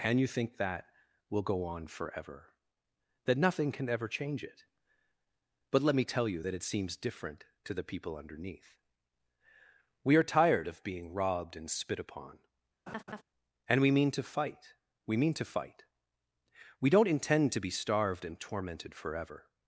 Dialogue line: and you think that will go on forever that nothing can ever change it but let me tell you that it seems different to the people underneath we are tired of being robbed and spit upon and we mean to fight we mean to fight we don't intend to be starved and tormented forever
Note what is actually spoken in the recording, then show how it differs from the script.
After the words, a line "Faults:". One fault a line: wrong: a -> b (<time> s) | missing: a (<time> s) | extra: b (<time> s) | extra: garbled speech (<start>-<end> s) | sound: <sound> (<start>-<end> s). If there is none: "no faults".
and you think that will go on forever that nothing can ever change it but let me tell you that it seems different to the people underneath we are tired of being robbed and spit upon and we mean to fight we mean to fight we don't intend to be starved and tormented forever
Faults:
sound: laugh (12.9-13.2 s)